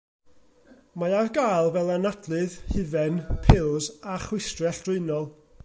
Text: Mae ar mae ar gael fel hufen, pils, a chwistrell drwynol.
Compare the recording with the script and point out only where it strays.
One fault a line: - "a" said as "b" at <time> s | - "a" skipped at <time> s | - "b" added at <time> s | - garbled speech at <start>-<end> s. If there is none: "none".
- "mae ar" skipped at 1.3 s
- "anadlydd" added at 1.9 s